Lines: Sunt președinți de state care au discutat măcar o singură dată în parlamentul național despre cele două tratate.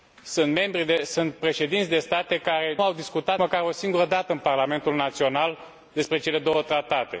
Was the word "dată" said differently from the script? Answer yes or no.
no